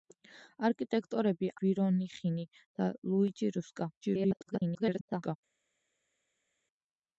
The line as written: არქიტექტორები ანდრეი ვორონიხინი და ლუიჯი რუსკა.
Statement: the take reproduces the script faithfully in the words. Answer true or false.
false